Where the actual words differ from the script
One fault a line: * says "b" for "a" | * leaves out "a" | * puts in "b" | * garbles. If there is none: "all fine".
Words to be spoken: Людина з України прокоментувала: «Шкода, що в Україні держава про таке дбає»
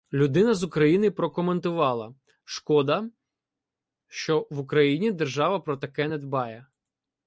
* puts in "не"